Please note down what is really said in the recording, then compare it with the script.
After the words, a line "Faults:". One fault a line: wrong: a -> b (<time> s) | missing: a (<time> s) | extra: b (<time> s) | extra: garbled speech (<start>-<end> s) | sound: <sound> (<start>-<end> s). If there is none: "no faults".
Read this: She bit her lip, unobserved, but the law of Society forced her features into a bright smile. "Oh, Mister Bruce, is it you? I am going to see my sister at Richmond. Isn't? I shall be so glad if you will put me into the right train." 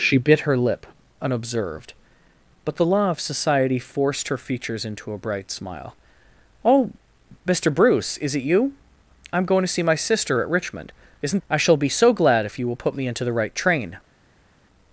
She bit her lip, unobserved, but the law of Society forced her features into a bright smile. "Oh, Mister Bruce, is it you? I am going to see my sister at Richmond. Isn't? I shall be so glad if you will put me into the right train."
Faults:
no faults